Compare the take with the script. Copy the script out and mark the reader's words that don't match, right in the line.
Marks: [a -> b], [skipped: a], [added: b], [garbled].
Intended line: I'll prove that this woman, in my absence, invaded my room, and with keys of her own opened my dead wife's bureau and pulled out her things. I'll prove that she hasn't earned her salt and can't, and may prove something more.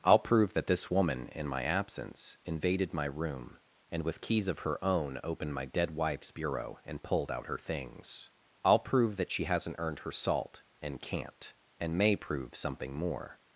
I'll prove that this woman, in my absence, invaded my room, and with keys of her own opened my dead wife's bureau and pulled out her things. I'll prove that she hasn't earned her salt and can't, and may prove something more.